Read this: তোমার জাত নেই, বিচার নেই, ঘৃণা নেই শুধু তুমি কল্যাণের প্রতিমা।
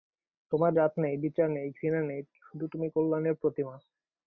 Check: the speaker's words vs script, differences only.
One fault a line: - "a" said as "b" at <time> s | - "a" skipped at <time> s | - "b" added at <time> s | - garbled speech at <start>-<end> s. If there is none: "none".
none